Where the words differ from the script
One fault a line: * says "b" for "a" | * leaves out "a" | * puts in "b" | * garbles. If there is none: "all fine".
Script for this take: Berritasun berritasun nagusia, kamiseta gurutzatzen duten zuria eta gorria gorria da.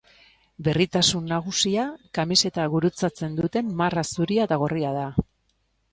* leaves out "berritasun"
* puts in "marra"
* leaves out "gorria"